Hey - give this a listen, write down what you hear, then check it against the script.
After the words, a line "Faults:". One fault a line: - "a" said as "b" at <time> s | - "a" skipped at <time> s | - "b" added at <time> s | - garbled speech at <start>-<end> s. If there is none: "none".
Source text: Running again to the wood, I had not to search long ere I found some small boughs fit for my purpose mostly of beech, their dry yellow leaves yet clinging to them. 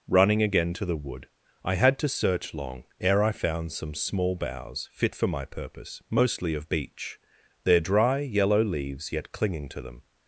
Running again to the wood, I had to search long ere I found some small boughs fit for my purpose mostly of beech, their dry yellow leaves yet clinging to them.
Faults:
- "not" skipped at 2.0 s